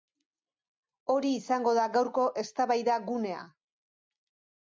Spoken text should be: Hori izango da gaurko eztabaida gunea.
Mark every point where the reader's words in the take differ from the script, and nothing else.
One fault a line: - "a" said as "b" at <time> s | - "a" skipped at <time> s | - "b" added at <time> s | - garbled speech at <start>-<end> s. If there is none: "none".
none